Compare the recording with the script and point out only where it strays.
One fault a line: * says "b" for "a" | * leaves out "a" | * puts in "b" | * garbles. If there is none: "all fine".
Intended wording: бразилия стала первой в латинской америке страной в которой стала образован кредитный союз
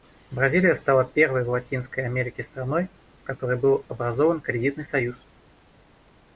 * says "был" for "стала"